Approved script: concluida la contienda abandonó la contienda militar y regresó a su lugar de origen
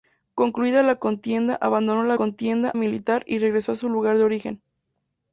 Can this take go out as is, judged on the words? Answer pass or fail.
pass